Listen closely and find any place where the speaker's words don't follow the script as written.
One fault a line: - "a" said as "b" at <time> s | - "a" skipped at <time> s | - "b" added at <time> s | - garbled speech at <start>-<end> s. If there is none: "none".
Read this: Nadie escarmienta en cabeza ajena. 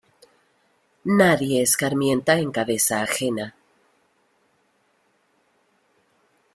none